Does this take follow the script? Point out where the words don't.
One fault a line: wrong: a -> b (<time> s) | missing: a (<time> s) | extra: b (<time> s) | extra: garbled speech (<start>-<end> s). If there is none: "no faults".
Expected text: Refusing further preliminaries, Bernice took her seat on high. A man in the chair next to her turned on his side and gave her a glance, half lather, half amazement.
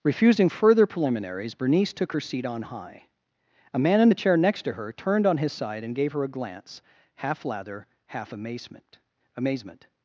extra: amazement (9.4 s)